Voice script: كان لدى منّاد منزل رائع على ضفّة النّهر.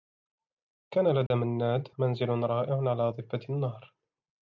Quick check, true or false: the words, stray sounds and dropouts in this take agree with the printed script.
false